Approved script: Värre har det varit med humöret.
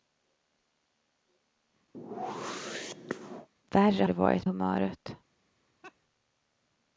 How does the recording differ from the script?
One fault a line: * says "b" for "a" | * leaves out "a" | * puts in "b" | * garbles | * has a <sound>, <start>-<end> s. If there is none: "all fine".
* has a whoosh, 1.9-3.5 s
* leaves out "har"
* leaves out "med"
* has a laugh, 5.8-6.0 s